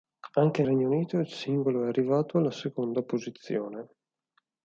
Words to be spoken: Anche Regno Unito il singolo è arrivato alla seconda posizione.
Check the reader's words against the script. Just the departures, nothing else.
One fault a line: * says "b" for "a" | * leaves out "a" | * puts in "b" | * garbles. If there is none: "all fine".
all fine